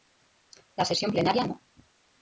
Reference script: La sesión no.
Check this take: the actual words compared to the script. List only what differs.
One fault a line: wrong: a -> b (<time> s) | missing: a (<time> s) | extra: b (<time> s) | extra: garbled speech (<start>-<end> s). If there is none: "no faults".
extra: plenaria (1.1 s)